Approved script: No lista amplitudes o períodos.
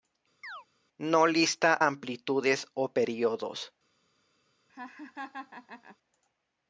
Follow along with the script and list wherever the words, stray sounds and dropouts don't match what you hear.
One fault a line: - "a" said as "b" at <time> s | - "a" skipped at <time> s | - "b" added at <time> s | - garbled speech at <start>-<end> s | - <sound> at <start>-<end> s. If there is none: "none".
- chirp at 0.4-0.7 s
- laugh at 4.7-6.0 s